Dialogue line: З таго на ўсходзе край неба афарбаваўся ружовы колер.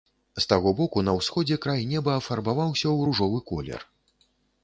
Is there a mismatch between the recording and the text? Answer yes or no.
yes